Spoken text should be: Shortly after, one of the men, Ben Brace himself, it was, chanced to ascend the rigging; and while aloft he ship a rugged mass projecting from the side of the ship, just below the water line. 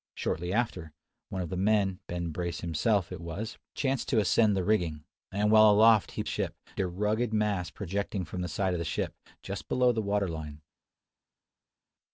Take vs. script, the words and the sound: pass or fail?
pass